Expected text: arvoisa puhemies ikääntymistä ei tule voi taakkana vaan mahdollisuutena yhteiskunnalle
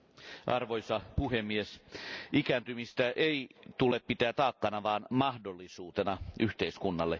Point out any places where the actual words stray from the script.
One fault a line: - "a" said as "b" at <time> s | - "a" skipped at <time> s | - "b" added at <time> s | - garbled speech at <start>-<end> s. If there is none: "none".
- "voi" said as "pitää" at 4.0 s